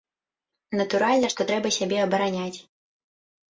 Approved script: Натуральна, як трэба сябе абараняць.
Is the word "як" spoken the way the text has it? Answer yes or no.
no